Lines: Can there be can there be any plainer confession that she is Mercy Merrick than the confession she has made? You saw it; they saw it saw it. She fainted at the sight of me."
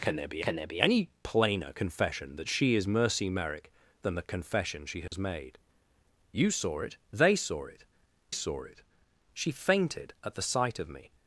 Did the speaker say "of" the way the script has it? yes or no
yes